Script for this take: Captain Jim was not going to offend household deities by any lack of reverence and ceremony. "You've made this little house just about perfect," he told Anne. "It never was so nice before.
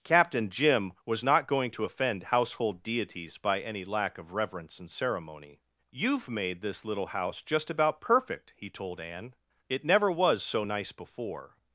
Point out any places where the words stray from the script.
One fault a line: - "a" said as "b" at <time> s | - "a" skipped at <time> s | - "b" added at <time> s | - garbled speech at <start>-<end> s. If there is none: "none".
none